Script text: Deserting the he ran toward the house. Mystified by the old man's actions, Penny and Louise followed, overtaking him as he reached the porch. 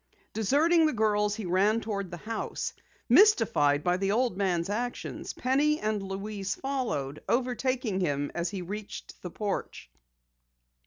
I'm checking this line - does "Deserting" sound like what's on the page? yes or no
yes